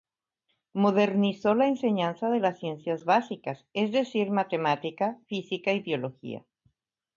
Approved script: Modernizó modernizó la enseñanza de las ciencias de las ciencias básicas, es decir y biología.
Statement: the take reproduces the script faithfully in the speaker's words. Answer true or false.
false